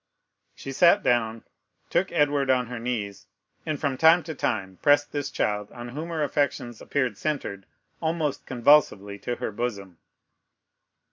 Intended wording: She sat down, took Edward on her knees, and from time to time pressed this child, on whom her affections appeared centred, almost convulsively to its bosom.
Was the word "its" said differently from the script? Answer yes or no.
yes